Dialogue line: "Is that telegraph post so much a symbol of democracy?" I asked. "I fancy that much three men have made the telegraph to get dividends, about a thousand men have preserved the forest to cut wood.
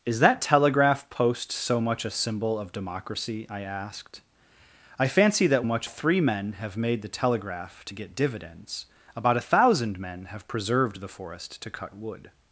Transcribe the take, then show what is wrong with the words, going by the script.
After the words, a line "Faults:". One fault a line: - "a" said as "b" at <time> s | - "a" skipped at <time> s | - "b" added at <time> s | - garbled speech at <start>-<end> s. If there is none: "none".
"Is that telegraph post so much a symbol of democracy?" I asked. "I fancy that much three men have made the telegraph to get dividends, about a thousand men have preserved the forest to cut wood.
Faults:
none